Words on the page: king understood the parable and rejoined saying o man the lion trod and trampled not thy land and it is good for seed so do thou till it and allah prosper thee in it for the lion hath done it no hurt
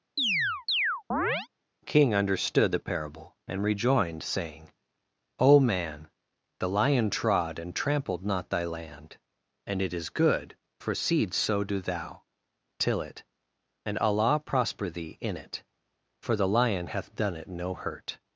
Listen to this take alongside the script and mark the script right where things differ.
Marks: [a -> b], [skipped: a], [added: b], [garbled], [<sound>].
[chirp] king understood the parable and rejoined saying o man the lion trod and trampled not thy land and it is good for seed so do thou till it and allah prosper thee in it for the lion hath done it no hurt